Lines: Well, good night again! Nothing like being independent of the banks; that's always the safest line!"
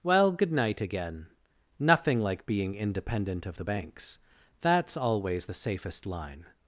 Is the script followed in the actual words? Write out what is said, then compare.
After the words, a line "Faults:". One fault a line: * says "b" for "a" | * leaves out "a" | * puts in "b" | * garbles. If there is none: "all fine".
Well, good night again! Nothing like being independent of the banks; that's always the safest line!"
Faults:
all fine